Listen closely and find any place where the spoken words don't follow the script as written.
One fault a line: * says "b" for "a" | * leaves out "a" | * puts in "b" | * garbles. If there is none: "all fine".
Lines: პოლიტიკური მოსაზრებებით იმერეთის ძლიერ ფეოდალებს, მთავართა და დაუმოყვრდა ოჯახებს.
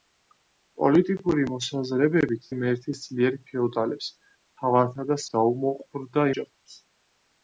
all fine